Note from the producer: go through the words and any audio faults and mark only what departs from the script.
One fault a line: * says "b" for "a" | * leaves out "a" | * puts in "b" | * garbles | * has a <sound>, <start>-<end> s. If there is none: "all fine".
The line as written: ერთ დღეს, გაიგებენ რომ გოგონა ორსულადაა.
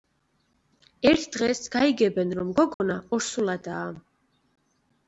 * has a dropout, 2.7-2.8 s